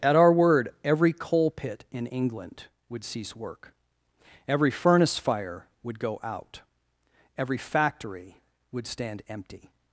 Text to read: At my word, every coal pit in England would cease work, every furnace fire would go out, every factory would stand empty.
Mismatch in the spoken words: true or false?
true